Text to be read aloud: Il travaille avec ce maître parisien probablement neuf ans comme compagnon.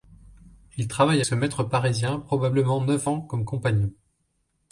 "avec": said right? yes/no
no